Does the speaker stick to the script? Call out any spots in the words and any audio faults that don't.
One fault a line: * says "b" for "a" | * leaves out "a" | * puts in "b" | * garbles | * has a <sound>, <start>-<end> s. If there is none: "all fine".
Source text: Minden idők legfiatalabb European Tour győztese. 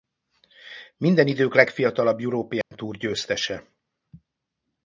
* has a dropout, 2.6-2.7 s